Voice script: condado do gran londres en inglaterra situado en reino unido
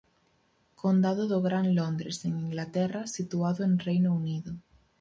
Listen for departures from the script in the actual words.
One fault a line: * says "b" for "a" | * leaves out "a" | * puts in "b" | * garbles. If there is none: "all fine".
all fine